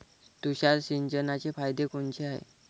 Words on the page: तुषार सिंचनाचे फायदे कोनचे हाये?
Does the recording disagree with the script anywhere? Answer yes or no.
no